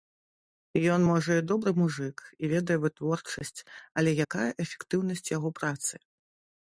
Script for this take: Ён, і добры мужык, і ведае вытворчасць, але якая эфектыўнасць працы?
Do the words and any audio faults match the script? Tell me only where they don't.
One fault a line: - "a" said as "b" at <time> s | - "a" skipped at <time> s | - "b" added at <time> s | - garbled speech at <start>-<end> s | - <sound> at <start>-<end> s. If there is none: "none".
- "можа" added at 1.1 s
- "яго" added at 5.4 s